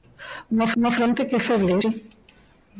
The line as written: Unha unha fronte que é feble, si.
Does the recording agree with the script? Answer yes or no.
yes